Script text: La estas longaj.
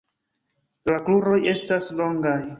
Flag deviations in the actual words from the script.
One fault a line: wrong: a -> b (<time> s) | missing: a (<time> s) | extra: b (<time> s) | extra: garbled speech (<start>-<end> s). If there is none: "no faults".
extra: kruroj (1.1 s)